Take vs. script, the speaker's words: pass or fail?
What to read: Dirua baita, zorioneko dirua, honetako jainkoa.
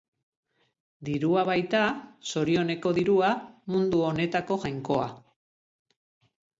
fail